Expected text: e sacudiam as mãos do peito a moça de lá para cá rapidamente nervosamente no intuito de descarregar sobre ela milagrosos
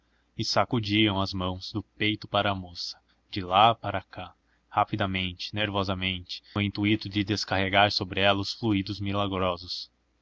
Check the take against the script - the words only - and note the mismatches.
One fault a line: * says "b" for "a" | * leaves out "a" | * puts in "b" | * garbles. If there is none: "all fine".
* puts in "para"
* puts in "os fluidos"